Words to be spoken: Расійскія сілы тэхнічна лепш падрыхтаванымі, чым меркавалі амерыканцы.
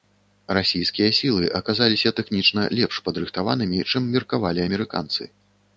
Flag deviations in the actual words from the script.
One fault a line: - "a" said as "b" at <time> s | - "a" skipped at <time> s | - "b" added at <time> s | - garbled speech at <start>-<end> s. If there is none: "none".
- "аказаліся" added at 1.6 s